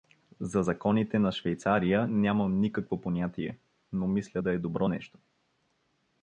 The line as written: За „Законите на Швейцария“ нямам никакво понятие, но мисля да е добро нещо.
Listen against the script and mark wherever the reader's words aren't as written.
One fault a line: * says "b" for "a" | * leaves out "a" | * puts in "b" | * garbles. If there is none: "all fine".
all fine